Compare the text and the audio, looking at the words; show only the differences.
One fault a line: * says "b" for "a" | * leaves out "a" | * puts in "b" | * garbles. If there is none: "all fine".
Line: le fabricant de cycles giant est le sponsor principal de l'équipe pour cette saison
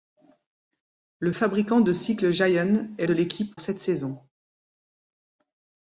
* leaves out "le sponsor principal"
* leaves out "pour"